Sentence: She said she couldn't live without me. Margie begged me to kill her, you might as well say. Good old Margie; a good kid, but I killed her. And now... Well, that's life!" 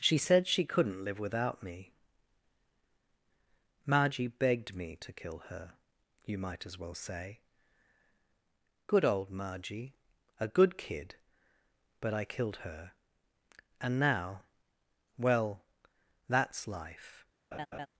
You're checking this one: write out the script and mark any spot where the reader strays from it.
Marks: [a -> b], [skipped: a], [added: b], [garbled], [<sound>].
She said she couldn't live without me. Margie begged me to kill her, you might as well say. Good old Margie; a good kid, but I killed her. And now... Well, that's life!" [laugh]